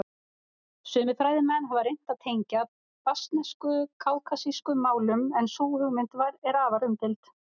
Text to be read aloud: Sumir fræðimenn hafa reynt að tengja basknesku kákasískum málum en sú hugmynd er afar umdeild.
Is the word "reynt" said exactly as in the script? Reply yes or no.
yes